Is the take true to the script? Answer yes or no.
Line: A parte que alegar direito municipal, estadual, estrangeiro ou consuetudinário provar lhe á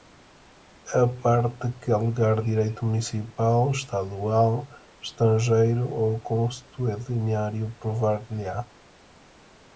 yes